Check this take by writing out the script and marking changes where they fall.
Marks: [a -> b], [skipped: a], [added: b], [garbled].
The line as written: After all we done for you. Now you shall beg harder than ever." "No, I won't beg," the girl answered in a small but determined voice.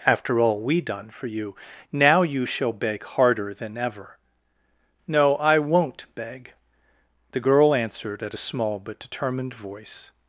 After all we done for you. Now you shall beg harder than ever." "No, I won't beg," the girl answered [in -> at] a small but determined voice.